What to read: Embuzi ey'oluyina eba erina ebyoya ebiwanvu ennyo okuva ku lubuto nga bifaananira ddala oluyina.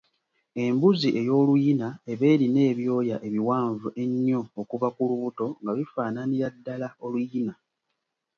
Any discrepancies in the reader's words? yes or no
no